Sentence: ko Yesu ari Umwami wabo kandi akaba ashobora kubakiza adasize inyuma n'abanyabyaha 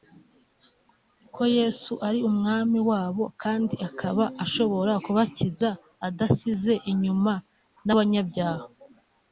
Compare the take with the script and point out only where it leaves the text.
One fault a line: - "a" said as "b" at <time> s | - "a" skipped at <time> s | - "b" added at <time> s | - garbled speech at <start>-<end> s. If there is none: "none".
none